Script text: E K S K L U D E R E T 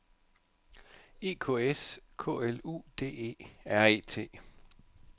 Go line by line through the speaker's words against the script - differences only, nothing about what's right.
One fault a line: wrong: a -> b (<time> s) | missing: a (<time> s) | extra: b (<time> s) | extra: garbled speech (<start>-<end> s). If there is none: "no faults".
no faults